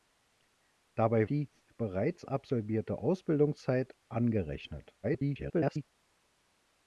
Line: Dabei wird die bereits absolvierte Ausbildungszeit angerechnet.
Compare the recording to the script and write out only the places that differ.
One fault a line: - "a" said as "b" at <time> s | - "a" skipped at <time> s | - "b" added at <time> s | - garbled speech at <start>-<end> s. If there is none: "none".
- "wird" skipped at 1.3 s
- garbled speech at 5.0-5.8 s